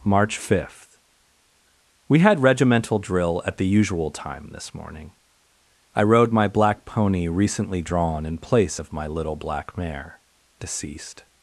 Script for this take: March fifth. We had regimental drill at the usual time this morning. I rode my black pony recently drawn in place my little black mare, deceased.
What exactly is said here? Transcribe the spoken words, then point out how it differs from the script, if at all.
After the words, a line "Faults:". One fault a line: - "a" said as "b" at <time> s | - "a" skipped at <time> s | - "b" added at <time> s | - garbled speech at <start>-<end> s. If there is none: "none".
March fifth. We had regimental drill at the usual time this morning. I rode my black pony recently drawn in place of my little black mare, deceased.
Faults:
- "of" added at 8.8 s